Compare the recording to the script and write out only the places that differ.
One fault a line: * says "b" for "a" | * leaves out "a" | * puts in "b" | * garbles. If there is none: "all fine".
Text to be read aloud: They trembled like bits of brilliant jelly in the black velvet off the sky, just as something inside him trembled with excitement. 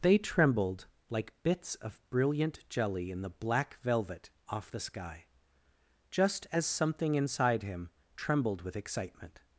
all fine